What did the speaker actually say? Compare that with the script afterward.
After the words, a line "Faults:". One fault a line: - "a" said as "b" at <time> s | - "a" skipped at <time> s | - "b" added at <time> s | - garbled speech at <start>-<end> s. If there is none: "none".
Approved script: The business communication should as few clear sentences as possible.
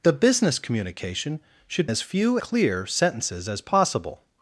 The business communication should as few clear sentences as possible.
Faults:
none